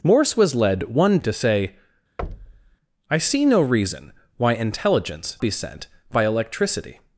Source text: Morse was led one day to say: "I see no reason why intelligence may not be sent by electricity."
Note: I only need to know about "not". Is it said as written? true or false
false